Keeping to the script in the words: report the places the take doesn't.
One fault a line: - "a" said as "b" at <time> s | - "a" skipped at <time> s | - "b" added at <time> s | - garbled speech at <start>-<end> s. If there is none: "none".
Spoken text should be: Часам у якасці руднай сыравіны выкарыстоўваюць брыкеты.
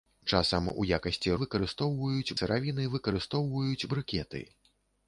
- "руднай" said as "выкарыстоўваюць" at 1.4 s